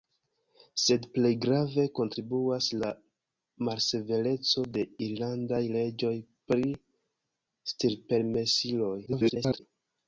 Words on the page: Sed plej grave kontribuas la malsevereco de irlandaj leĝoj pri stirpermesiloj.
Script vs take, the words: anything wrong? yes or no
yes